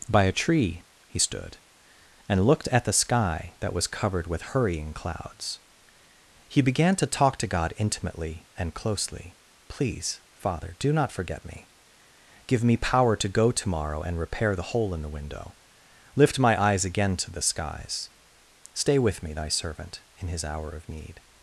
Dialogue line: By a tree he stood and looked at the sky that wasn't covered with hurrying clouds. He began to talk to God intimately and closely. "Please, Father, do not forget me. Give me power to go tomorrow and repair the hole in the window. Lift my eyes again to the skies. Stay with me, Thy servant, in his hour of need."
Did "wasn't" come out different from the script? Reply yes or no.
yes